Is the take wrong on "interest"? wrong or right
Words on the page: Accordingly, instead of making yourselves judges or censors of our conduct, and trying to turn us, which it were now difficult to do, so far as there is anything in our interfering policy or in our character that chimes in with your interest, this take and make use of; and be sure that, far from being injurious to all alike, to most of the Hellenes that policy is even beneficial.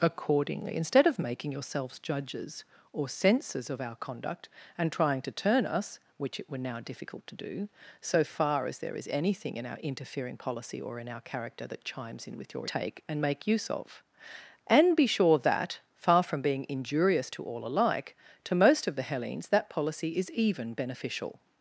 wrong